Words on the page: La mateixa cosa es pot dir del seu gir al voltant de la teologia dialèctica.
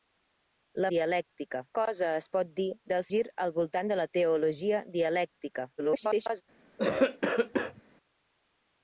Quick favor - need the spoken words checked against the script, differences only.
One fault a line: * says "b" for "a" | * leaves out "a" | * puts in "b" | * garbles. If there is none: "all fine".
* says "dialèctica" for "mateixa"
* leaves out "seu"
* garbles